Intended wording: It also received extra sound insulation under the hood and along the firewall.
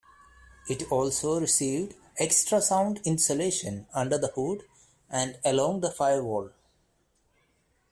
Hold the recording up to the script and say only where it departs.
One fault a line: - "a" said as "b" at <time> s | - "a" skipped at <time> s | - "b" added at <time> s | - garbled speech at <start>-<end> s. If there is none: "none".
none